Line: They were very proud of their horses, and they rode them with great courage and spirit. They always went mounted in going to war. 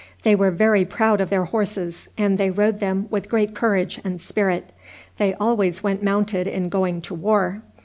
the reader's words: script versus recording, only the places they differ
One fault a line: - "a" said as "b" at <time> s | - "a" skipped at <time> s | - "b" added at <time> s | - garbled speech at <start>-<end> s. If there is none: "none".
none